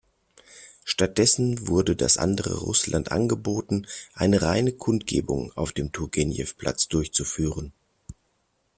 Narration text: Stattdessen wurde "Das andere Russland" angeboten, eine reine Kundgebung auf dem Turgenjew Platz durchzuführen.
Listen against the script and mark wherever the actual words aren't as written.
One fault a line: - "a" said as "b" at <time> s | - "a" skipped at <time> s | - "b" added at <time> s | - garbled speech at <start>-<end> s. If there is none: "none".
none